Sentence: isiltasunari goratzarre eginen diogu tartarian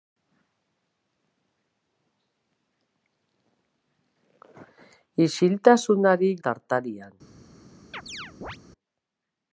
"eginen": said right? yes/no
no